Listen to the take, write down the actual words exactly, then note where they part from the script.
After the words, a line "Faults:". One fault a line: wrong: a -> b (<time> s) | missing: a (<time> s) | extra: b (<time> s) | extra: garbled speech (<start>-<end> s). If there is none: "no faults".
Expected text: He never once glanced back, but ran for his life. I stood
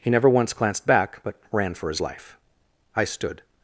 He never once glanced back, but ran for his life. I stood
Faults:
no faults